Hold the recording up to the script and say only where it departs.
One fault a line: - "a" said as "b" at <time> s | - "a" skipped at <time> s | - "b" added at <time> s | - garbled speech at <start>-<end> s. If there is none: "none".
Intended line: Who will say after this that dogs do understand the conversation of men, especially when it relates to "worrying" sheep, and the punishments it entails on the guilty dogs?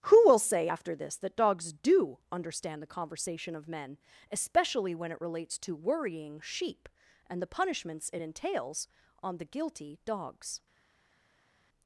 none